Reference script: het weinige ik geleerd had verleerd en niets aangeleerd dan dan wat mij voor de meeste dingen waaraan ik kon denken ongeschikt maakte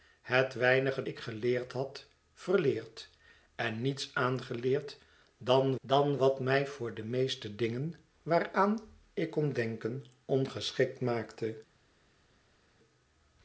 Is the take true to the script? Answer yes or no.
yes